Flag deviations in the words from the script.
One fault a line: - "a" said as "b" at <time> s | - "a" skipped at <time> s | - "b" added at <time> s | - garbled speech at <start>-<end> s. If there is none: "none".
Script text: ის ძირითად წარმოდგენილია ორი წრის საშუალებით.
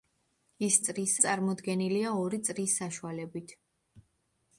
- "ძირითად" said as "წრის" at 0.9 s